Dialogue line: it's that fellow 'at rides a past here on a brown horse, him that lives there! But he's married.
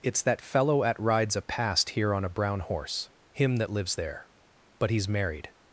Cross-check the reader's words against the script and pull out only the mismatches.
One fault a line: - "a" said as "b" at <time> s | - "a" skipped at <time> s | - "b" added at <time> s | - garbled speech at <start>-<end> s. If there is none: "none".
none